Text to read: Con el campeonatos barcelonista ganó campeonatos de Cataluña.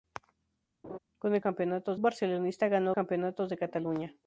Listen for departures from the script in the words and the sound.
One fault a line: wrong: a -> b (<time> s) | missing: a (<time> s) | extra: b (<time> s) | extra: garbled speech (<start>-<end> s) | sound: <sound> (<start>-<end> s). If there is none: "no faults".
sound: laugh (0.8-1.0 s)